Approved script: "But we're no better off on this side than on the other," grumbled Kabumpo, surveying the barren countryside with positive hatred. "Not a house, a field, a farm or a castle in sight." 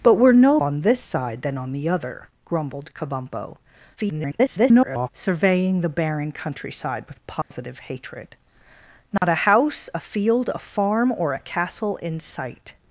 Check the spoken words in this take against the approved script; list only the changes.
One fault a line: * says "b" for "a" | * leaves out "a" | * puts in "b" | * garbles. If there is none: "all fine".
* leaves out "better off"
* garbles